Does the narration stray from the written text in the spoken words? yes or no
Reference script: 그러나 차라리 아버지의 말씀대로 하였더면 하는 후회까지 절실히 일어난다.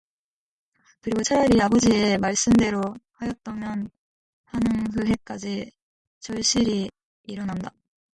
yes